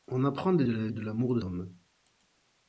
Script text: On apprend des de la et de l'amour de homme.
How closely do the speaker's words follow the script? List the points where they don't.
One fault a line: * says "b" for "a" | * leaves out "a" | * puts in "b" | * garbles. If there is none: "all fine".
all fine